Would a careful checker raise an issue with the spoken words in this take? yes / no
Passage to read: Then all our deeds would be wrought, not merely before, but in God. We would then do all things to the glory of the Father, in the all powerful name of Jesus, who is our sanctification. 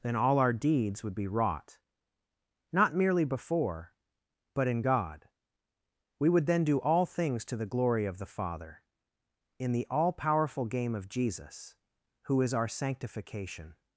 yes